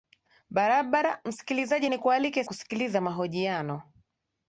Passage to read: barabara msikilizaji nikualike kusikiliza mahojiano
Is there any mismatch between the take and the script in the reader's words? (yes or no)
no